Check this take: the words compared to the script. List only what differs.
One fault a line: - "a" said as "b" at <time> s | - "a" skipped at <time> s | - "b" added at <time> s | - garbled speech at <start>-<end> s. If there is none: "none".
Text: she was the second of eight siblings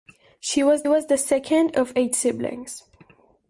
- "was" added at 0.9 s